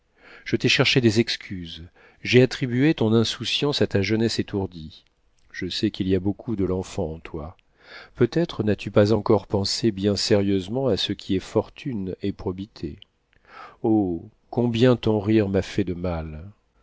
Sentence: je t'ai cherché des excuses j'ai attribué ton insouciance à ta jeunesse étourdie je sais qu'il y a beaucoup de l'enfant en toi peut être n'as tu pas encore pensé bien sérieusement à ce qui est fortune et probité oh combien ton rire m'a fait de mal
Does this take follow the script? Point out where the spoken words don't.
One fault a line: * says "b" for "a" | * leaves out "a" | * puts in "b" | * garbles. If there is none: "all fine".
all fine